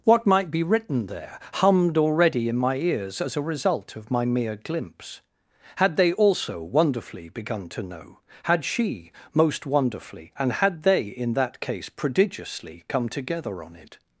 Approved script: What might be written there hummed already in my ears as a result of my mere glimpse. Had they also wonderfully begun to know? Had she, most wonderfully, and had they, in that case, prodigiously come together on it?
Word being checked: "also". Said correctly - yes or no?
yes